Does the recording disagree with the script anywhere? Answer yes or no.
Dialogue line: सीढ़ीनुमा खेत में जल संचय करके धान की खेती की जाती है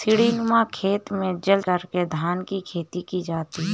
yes